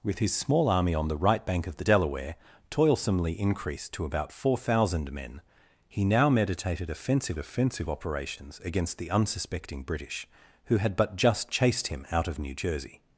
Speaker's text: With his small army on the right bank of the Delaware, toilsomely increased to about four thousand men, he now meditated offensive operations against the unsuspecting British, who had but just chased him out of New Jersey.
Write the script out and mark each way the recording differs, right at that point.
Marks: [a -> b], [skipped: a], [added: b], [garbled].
With his small army on the right bank of the Delaware, toilsomely increased to about four thousand men, he now meditated offensive [added: offensive] operations against the unsuspecting British, who had but just chased him out of New Jersey.